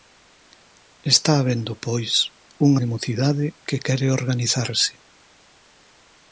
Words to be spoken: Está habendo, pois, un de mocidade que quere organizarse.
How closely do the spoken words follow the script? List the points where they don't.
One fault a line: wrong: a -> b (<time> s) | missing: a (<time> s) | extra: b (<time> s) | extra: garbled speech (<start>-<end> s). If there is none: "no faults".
no faults